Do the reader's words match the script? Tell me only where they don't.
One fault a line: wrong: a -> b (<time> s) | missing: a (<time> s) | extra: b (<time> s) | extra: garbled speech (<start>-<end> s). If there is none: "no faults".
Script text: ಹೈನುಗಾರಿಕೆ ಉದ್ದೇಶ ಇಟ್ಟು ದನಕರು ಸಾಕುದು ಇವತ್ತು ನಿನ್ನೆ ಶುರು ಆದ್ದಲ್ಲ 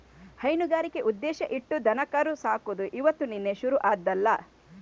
no faults